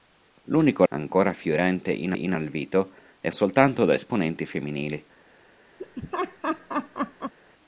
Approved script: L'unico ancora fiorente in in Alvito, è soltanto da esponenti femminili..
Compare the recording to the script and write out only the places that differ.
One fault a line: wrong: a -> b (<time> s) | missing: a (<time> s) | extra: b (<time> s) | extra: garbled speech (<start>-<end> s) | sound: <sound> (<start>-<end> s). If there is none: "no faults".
sound: laugh (5.8-7.3 s)